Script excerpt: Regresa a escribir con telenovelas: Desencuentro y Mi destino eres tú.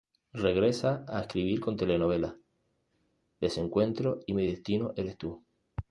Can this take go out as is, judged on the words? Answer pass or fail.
pass